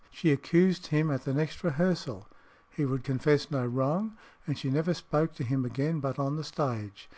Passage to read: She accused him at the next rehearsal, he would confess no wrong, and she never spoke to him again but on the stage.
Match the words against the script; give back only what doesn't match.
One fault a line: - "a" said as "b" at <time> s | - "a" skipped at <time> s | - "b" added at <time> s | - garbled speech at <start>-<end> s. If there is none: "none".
none